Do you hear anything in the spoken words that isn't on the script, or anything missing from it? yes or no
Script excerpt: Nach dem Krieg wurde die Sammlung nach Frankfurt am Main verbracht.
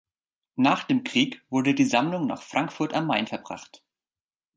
no